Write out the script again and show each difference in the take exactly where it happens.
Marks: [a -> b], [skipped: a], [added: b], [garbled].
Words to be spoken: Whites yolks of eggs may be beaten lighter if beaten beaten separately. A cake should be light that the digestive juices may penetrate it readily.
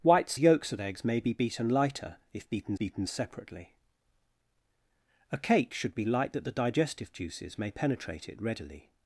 Whites yolks of eggs may be beaten lighter if beaten beaten separately. A cake should be light that the digestive juices may penetrate it readily.